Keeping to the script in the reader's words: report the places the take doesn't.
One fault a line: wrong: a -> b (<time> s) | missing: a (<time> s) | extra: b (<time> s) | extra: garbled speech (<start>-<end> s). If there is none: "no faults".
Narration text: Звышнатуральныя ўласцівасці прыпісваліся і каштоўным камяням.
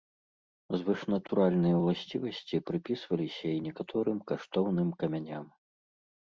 extra: некаторым (3.7 s)